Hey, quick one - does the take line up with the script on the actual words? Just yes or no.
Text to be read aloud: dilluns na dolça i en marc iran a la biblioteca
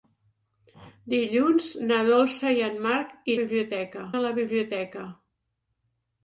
no